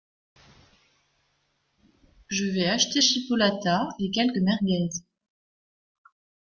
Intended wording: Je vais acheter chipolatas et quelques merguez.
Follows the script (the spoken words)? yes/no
yes